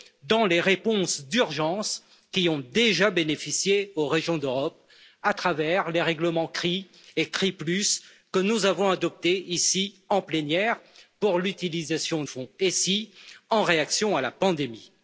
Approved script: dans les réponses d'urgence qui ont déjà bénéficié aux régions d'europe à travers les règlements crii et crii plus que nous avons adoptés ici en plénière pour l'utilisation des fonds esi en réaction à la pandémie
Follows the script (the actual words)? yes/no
no